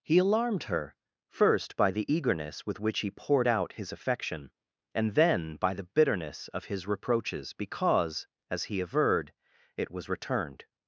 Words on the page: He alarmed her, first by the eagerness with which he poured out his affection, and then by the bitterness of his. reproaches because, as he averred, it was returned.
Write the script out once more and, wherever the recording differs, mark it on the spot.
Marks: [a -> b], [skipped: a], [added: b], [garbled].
He alarmed her, first by the eagerness with which he poured out his affection, and then by the bitterness of his. reproaches because, as he averred, it was returned.